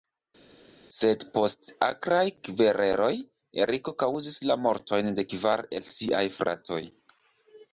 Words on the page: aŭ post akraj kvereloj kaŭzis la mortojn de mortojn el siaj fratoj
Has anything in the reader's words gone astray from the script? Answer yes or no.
yes